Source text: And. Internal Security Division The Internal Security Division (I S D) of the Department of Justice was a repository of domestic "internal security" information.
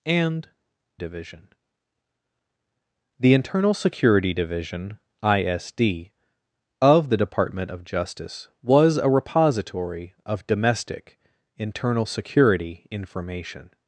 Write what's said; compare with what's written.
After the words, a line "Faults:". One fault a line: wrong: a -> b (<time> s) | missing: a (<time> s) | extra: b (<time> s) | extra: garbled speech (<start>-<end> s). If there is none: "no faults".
And. Division The Internal Security Division (I S D) of the Department of Justice was a repository of domestic "internal security" information.
Faults:
missing: Internal Security (0.5 s)